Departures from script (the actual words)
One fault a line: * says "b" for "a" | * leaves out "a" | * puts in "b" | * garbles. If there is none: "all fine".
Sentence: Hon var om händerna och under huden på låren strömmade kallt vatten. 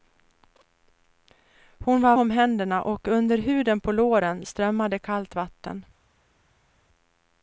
all fine